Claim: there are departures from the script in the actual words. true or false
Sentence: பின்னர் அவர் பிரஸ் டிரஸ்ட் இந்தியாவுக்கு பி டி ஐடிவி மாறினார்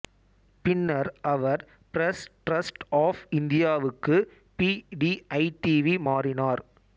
true